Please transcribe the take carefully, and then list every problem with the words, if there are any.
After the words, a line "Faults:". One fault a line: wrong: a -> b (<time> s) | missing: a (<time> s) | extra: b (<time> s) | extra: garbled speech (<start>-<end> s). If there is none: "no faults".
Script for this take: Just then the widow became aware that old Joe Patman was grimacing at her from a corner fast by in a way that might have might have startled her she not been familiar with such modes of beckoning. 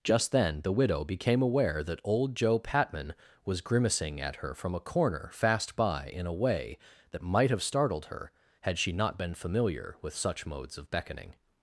Just then the widow became aware that old Joe Patman was grimacing at her from a corner fast by in a way that might have startled her had she not been familiar with such modes of beckoning.
Faults:
missing: might have (7.6 s)
extra: had (8.6 s)